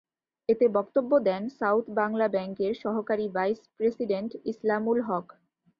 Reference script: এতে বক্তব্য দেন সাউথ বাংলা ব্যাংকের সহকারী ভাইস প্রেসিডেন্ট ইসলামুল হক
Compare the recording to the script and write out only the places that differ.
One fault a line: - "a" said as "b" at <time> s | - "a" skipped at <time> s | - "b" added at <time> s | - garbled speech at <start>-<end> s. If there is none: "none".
none